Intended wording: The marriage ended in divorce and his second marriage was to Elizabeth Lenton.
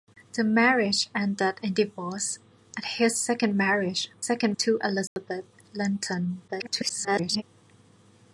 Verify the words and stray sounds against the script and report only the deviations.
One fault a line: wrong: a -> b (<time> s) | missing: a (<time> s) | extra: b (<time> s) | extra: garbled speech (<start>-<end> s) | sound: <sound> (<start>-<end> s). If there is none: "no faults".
wrong: was -> second (4.2 s)
sound: dropout (5.1-5.2 s)
extra: garbled speech (6.5-7.4 s)